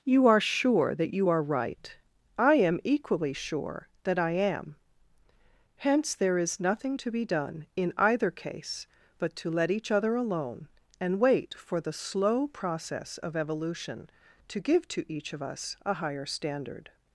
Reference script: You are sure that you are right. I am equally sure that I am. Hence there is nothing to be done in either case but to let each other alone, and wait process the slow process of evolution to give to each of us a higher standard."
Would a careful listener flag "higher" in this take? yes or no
no